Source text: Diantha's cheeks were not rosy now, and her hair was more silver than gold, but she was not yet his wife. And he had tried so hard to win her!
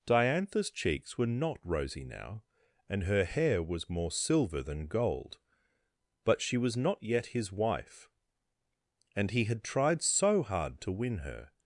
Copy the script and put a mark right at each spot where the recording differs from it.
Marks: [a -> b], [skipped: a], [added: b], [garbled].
Diantha's cheeks were not rosy now, and her hair was more silver than gold, but she was not yet his wife. And he had tried so hard to win her!